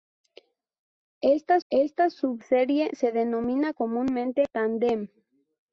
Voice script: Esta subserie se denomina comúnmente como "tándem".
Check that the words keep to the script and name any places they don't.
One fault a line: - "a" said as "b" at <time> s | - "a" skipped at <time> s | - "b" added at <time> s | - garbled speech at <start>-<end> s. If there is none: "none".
- "esta" added at 1.7 s
- "como" skipped at 4.4 s